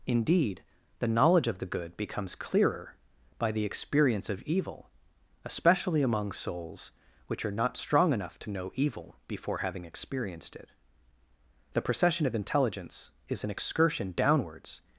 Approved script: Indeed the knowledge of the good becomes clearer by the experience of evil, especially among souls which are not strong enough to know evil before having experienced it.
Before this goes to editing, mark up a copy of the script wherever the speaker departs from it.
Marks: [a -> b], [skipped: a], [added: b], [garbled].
Indeed the knowledge of the good becomes clearer by the experience of evil, especially among souls which are not strong enough to know evil before having experienced it. [added: THE PROCESSION OF INTELLIGENCE IS AN EXCURSION DOWNWARDS]